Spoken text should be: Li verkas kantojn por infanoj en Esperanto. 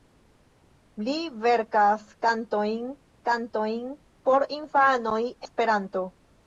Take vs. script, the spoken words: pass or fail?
fail